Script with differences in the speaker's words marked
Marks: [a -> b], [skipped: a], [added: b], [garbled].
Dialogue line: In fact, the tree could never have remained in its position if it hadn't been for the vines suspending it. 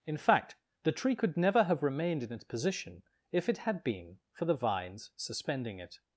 In fact, the tree could never have remained in its position if it [hadn't -> had] been for the vines suspending it.